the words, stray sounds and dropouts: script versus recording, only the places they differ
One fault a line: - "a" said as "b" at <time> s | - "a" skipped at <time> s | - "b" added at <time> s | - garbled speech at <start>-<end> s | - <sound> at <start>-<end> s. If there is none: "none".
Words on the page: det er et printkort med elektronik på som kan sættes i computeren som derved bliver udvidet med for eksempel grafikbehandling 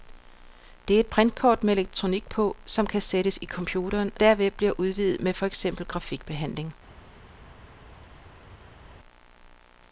- "som" skipped at 4.1 s